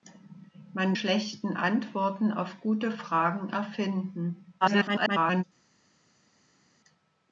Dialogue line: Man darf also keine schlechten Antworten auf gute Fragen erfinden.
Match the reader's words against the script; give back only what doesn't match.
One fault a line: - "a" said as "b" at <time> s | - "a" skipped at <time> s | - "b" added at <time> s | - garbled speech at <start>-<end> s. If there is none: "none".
- "darf also keine" skipped at 0.9 s
- garbled speech at 4.6-5.4 s